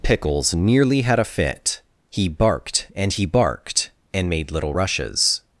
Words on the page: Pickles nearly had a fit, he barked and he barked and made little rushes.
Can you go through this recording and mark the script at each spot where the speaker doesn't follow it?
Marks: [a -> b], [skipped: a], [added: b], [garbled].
Pickles nearly had a fit, he barked and he barked and made little rushes.